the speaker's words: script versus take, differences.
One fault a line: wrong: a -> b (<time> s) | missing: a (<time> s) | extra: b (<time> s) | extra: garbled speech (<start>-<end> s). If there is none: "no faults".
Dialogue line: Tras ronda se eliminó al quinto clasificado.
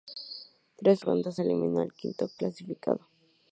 no faults